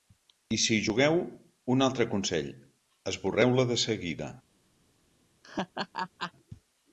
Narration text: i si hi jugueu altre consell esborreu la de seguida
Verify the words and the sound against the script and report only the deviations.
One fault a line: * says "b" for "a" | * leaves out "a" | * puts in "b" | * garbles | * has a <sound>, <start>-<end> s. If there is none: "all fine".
* puts in "un"
* has a laugh, 5.4-6.3 s